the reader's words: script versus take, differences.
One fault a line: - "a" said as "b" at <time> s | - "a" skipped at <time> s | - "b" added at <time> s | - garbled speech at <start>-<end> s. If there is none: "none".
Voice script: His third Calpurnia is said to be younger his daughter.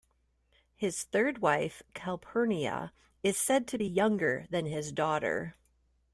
- "wife" added at 1.4 s
- "than" added at 4.5 s